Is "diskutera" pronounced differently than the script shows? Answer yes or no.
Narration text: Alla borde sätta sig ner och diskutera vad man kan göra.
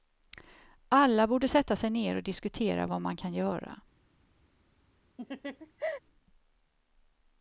no